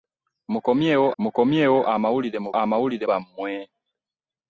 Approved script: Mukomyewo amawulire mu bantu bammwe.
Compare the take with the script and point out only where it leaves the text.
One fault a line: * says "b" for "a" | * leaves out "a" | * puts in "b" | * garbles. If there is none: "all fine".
* puts in "mukomyewo"
* says "amawulire" for "bantu"